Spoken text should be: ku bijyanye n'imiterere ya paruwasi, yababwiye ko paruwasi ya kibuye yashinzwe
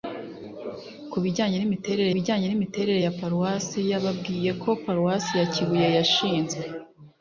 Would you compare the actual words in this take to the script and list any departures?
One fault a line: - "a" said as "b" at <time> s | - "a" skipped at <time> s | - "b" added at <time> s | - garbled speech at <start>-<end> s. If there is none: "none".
- "bijyanye n'imiterere" added at 2.1 s